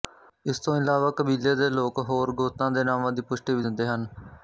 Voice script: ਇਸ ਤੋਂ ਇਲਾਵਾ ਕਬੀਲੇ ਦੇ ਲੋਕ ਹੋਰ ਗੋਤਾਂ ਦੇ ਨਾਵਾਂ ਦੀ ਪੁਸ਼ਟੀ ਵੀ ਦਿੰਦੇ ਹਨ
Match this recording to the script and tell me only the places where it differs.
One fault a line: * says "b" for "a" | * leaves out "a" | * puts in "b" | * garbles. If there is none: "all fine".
all fine